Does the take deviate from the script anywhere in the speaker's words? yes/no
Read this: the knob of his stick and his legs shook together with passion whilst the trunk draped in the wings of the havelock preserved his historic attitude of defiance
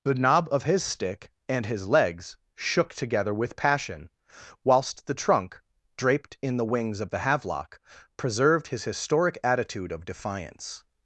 no